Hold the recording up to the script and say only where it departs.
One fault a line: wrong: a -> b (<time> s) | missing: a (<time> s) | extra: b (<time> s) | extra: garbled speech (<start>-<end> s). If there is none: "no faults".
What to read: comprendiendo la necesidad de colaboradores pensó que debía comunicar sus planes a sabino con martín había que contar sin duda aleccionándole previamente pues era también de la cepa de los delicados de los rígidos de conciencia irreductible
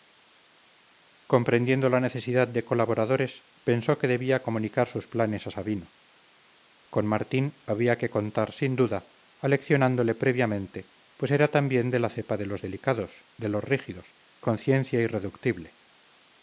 missing: de (14.2 s)